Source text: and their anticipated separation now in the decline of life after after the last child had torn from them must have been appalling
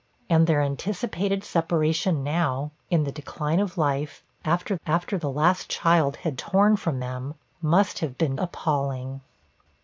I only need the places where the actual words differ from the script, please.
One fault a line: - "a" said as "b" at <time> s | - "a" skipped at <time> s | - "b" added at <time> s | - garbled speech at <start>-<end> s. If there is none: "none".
none